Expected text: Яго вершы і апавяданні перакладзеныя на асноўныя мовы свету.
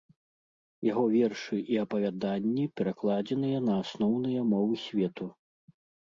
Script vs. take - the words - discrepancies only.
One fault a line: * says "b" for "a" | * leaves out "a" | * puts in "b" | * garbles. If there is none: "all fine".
all fine